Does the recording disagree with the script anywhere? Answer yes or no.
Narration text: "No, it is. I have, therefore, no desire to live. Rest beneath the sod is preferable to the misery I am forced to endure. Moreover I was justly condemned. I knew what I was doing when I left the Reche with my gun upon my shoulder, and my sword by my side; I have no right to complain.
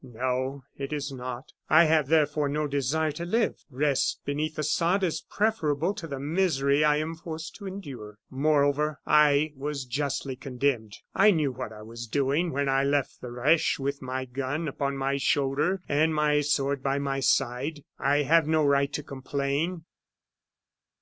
yes